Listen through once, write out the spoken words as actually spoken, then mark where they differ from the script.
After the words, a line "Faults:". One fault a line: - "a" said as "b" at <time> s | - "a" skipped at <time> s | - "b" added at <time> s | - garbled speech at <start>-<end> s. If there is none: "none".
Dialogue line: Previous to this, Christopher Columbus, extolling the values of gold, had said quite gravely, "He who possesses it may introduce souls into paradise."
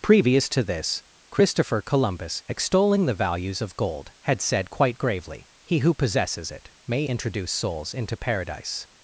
Previous to this, Christopher Columbus, extolling the values of gold, had said quite gravely, "He who possesses it may introduce souls into paradise."
Faults:
none